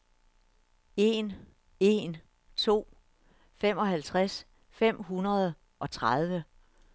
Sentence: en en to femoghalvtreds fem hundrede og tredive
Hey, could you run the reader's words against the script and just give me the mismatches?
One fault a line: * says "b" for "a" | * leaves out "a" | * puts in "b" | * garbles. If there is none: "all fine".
all fine